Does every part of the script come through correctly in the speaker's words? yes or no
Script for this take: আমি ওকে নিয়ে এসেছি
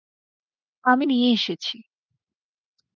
no